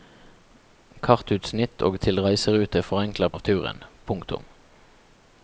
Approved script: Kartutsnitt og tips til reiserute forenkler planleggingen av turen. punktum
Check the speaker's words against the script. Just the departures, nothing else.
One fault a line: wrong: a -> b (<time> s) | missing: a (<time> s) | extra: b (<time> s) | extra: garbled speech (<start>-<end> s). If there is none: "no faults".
missing: tips (2.0 s)
missing: planleggingen (3.3 s)